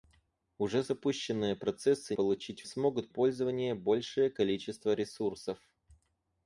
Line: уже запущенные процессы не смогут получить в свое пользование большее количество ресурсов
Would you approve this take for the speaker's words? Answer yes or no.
no